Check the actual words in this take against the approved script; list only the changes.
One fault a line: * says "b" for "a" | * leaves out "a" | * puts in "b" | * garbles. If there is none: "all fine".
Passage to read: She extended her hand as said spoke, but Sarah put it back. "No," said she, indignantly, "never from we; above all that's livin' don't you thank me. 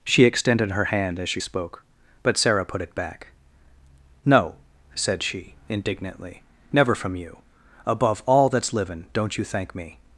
* says "she" for "said"
* says "you" for "we"